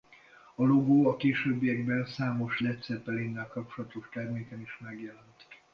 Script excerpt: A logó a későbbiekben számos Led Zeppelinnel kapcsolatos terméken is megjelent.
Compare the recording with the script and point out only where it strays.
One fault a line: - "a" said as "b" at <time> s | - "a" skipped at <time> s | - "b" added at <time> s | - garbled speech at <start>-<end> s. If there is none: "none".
none